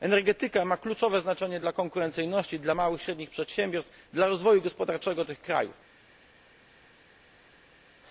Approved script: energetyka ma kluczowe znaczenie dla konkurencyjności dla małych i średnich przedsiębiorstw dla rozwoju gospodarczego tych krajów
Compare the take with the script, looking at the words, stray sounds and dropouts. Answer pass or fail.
pass